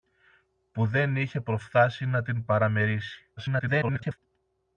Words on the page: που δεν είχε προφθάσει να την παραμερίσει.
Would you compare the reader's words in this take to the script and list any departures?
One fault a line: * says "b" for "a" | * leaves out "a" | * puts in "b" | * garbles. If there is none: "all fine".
* garbles